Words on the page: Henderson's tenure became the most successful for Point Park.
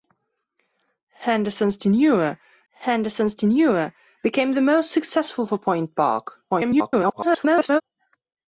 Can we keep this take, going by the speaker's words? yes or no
no